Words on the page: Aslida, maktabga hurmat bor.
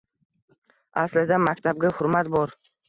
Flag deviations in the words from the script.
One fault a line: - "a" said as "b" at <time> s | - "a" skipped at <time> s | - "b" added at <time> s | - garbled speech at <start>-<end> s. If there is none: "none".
none